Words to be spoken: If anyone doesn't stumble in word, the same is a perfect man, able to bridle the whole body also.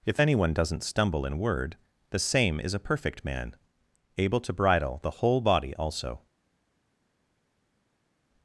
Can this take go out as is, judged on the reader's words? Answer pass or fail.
pass